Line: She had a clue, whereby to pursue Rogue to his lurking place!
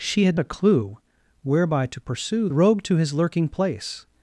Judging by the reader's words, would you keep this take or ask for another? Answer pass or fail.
pass